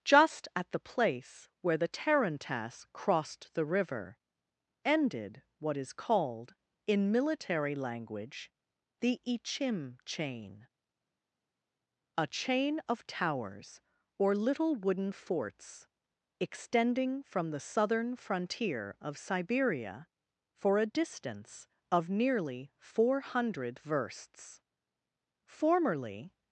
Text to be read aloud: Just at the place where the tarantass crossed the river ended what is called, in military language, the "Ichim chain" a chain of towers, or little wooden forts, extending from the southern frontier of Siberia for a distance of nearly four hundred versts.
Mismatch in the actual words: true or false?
true